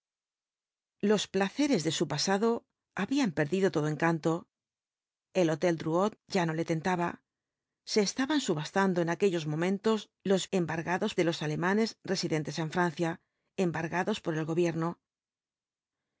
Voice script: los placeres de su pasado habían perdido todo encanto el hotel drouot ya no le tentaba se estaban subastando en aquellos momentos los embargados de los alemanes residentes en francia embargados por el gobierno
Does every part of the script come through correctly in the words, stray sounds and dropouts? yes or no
yes